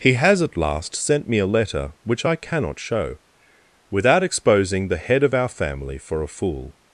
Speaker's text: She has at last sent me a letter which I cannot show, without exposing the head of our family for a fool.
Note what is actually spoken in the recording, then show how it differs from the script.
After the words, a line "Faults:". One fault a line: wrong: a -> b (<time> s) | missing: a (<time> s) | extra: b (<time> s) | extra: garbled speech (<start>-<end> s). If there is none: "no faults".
He has at last sent me a letter which I cannot show, without exposing the head of our family for a fool.
Faults:
wrong: She -> He (0.0 s)